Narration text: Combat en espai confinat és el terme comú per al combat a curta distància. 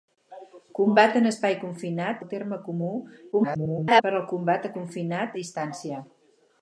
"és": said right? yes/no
no